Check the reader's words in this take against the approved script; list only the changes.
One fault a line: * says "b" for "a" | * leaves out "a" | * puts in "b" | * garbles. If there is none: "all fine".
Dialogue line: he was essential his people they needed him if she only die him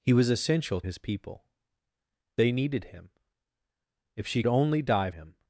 all fine